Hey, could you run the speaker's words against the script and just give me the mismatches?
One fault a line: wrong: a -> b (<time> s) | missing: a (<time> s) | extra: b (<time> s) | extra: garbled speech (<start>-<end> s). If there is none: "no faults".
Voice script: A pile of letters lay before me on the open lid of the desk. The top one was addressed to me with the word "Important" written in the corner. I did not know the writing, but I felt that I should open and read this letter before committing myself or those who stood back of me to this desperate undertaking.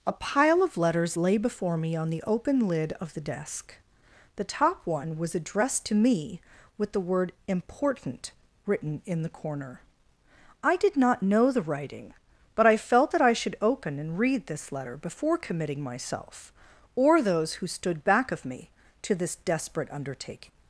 no faults